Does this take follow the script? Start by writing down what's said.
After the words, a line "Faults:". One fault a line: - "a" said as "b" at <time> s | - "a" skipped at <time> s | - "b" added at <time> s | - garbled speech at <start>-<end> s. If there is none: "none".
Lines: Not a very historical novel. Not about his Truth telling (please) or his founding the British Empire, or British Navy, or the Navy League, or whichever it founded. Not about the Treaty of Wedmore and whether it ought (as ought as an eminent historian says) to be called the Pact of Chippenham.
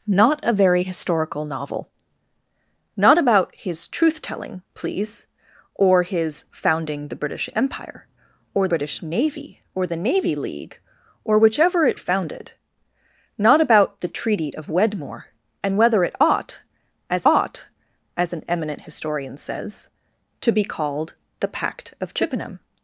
Not a very historical novel. Not about his Truth telling (please) or his founding the British Empire, or British Navy, or the Navy League, or whichever it founded. Not about the Treaty of Wedmore and whether it ought (as ought as an eminent historian says) to be called the Pact of Chippenham.
Faults:
none